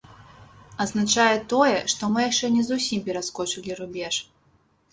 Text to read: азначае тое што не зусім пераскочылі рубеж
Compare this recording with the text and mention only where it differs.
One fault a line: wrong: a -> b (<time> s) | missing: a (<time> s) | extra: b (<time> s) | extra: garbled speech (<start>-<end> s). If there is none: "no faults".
extra: мы яшчэ (2.1 s)